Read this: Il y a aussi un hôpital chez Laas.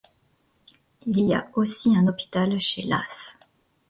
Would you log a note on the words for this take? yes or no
no